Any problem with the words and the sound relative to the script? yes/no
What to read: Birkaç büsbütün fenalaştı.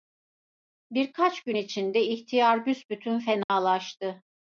yes